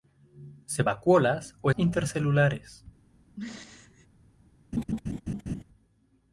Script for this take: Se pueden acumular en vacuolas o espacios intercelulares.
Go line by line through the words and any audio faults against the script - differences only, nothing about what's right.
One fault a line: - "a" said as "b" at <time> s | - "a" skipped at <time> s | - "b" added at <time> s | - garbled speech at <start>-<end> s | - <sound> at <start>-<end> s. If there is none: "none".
- "pueden acumular en" skipped at 0.8 s
- "espacios" skipped at 1.7 s
- throat clearing at 3.4-4.1 s
- laugh at 4.7-5.6 s